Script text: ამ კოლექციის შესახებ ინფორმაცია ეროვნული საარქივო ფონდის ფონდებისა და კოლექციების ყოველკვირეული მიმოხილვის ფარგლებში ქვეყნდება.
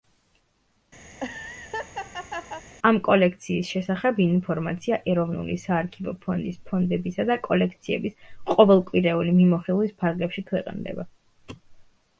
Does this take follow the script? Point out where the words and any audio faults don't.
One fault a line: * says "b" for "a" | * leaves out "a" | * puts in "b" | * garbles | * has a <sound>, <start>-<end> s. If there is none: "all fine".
* has a laugh, 1.1-2.6 s